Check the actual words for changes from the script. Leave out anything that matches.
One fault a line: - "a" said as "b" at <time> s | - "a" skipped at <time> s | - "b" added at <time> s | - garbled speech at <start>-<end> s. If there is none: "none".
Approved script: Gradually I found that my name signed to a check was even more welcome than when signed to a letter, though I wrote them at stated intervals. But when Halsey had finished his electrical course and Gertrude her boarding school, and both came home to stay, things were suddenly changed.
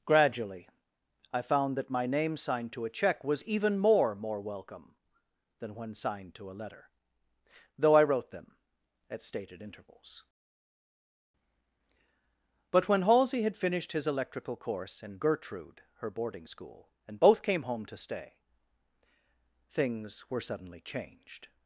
- "more" added at 4.2 s